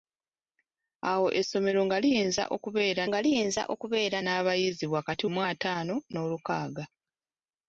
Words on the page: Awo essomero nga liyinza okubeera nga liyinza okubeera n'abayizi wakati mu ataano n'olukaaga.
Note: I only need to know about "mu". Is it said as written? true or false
true